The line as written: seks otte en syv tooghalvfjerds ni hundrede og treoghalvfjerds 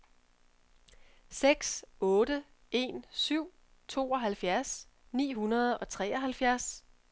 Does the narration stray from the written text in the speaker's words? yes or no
no